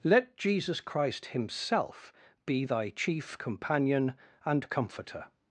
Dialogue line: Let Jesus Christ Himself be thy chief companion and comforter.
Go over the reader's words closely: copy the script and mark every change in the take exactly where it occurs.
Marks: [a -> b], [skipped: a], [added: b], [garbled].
Let Jesus Christ Himself be thy chief companion and comforter.